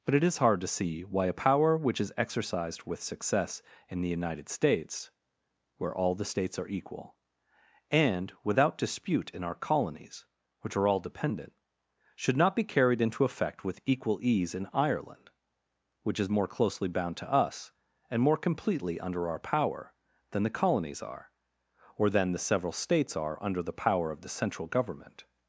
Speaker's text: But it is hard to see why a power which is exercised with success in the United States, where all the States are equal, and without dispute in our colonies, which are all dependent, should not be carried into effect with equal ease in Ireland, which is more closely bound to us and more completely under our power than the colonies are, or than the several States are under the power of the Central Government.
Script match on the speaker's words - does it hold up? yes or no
yes